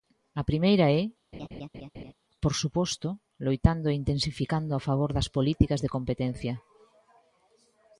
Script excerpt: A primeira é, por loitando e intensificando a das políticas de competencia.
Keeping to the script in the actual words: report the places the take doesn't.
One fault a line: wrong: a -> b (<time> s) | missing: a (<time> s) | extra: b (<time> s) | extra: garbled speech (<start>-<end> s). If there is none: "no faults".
extra: suposto (2.6 s)
extra: favor (4.9 s)